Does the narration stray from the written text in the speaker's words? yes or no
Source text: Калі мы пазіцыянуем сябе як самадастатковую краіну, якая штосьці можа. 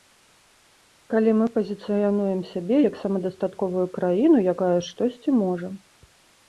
no